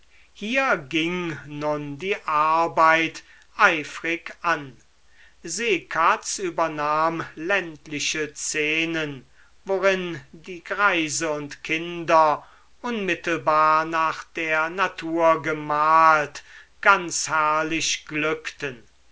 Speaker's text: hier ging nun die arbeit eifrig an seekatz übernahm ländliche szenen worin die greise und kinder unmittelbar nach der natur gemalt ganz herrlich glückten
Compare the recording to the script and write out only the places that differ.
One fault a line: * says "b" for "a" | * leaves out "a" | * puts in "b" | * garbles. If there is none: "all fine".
all fine